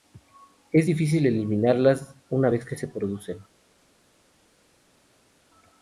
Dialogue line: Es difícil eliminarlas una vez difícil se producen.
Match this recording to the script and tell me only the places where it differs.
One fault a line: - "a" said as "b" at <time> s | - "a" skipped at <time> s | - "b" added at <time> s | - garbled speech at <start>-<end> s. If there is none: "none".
- "difícil" said as "que" at 2.7 s